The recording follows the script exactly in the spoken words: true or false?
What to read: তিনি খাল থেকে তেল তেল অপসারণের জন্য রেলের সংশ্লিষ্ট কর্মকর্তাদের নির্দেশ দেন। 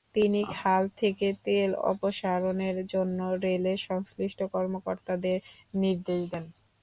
false